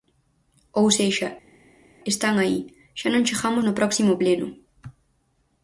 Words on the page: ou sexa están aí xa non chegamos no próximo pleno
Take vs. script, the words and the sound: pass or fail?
pass